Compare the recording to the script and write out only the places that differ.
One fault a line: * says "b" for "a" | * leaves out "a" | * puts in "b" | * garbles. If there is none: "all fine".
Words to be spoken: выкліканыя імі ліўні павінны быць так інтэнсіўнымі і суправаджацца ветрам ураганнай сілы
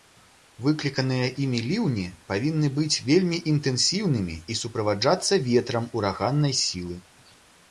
* says "вельмі" for "так"